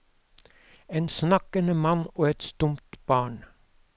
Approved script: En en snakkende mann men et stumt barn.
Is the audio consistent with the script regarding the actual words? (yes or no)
no